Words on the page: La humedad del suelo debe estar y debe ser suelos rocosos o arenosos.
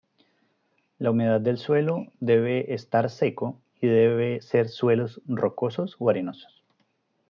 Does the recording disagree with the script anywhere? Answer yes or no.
yes